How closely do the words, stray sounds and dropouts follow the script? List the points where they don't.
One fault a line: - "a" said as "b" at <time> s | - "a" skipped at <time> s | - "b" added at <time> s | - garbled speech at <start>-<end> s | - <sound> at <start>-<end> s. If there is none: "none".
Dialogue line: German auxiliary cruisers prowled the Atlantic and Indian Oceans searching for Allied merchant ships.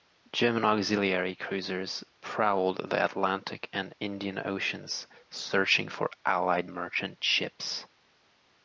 none